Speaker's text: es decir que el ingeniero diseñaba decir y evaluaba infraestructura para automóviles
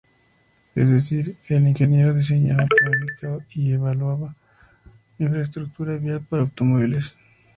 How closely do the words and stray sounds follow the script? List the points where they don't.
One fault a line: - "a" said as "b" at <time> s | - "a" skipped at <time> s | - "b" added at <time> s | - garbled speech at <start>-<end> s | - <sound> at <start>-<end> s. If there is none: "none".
- "decir" said as "planificaba" at 2.6 s
- "vial" added at 6.0 s